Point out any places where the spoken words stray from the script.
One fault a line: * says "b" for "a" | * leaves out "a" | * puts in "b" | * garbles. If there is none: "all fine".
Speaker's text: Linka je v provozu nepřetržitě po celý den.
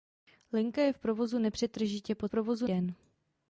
* says "provozu" for "celý"